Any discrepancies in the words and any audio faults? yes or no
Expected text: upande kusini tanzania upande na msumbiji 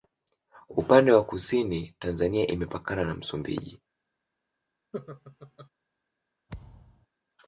yes